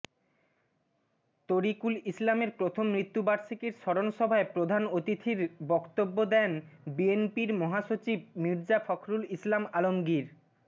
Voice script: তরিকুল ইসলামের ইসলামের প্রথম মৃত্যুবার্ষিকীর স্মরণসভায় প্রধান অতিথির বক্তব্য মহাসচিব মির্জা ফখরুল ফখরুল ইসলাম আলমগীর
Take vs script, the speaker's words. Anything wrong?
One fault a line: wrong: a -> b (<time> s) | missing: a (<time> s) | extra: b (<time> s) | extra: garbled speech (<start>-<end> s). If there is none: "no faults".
missing: ইসলামের (2.5 s)
extra: দেন বিএনপির (6.3 s)
missing: ফখরুল (9.2 s)